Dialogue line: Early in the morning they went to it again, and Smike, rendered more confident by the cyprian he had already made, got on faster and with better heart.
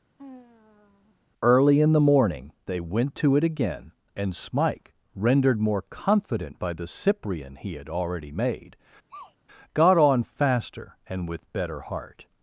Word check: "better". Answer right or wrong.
right